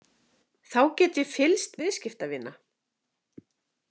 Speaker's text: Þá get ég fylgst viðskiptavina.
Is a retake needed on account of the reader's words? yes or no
no